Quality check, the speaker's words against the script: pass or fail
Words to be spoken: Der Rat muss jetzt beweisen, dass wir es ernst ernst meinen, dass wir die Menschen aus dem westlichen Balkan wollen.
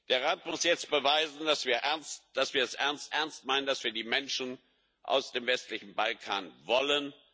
pass